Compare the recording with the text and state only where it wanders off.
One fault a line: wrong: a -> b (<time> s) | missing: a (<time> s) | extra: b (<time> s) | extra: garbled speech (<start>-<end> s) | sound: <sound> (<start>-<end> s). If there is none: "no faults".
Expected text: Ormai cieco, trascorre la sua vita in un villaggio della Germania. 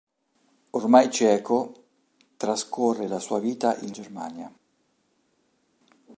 missing: un villaggio della (3.9 s)